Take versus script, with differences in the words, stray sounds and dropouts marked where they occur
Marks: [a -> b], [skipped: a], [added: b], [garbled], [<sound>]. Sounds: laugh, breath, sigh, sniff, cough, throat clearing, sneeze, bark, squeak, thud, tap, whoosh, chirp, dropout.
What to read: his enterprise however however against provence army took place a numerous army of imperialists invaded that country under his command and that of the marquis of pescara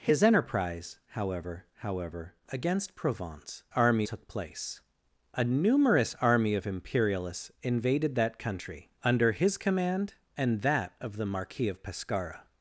his enterprise however however against provence army took place a numerous army of imperialists invaded that country under his command and that of the marquis of pescara